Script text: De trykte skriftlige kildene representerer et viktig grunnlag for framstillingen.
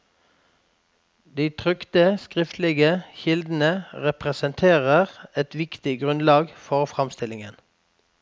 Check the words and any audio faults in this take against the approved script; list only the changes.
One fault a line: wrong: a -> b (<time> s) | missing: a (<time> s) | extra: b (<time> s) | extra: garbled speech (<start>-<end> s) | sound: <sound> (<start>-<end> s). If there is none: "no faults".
no faults